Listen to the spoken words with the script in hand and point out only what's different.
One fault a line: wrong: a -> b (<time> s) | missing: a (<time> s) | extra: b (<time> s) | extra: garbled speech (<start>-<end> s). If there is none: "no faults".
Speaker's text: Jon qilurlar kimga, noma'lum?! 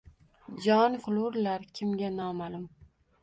no faults